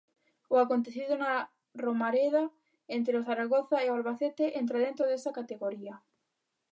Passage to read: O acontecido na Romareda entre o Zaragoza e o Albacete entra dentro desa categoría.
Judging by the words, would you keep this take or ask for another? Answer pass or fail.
pass